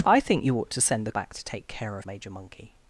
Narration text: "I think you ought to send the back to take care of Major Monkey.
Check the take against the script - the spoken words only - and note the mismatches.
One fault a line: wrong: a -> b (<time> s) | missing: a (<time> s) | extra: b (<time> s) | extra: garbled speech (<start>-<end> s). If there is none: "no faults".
no faults